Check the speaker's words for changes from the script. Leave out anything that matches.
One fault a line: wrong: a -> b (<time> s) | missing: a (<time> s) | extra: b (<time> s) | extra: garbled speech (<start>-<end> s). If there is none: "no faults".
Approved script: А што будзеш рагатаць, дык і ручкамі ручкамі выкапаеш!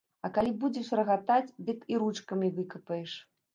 wrong: што -> калі (0.3 s)
missing: ручкамі (2.5 s)